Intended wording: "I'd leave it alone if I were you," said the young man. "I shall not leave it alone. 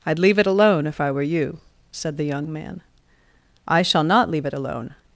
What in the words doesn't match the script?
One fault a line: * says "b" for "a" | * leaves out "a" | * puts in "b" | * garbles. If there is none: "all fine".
all fine